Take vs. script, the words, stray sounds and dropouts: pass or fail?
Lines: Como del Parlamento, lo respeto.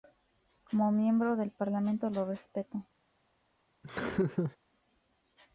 fail